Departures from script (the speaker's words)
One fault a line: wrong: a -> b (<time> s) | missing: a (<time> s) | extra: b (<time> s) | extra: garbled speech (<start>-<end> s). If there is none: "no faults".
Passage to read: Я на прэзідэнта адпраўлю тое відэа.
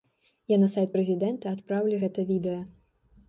extra: сайт (0.8 s)
wrong: тое -> гэта (2.0 s)